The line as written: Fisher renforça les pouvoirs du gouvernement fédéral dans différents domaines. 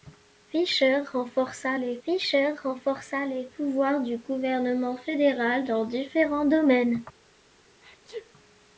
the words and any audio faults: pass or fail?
fail